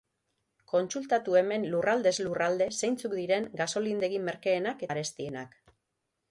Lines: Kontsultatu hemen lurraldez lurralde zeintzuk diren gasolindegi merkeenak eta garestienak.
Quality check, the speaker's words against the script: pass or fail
fail